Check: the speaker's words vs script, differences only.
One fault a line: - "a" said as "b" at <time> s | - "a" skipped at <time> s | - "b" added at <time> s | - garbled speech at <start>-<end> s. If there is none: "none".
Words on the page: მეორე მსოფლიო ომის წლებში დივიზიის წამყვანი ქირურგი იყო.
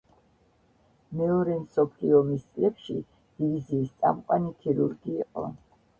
none